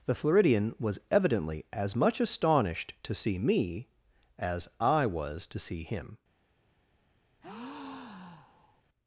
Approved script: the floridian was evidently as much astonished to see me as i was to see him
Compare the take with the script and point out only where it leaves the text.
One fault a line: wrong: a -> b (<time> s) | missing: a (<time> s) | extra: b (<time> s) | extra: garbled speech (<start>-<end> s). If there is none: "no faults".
no faults